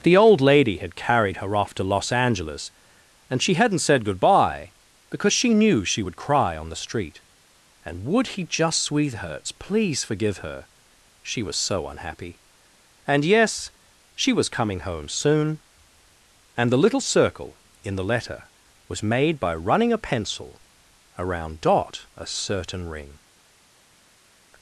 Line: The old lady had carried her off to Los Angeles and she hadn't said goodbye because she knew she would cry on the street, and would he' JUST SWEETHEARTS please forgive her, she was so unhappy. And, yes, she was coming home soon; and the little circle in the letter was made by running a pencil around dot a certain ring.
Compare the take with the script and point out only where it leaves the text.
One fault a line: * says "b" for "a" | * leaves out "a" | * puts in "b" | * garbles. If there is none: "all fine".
all fine